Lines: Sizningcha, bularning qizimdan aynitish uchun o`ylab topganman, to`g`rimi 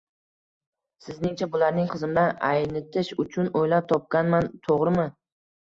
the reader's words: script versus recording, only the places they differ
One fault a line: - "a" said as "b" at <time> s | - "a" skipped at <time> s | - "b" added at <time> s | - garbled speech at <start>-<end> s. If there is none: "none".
none